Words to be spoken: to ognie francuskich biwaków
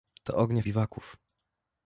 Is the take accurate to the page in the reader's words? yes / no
no